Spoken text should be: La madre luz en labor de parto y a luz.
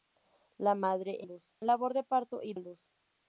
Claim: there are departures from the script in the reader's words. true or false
false